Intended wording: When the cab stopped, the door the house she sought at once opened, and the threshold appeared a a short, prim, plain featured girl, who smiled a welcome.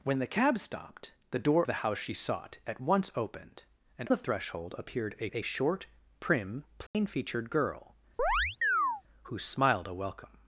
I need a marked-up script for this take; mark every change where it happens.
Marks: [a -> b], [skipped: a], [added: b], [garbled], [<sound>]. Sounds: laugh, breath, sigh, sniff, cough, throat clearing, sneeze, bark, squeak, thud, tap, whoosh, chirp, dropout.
When the cab stopped, the door the house she sought at once opened, and the threshold appeared a a short, prim, plain [dropout] featured girl, [chirp] who smiled a welcome.